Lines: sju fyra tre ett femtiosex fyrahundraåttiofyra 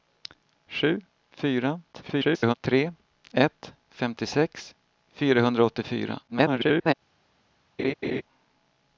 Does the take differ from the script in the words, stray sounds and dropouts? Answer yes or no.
yes